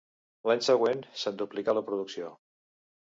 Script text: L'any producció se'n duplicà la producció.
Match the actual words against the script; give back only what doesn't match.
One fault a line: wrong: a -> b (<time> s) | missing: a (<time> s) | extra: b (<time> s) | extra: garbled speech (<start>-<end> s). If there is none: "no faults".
wrong: producció -> següent (0.7 s)